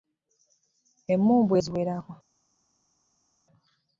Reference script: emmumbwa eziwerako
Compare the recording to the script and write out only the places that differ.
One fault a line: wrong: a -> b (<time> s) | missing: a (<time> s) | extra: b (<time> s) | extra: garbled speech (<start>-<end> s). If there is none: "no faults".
no faults